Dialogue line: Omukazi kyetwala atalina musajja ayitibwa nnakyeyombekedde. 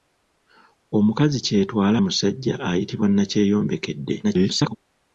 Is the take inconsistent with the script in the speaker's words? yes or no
yes